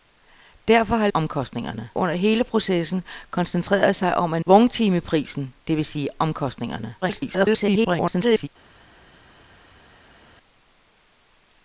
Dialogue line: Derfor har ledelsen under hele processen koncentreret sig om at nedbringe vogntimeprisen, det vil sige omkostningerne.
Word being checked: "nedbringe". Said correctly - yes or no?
no